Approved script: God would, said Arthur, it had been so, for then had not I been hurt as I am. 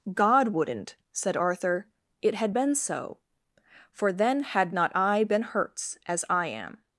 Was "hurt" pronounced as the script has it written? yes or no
no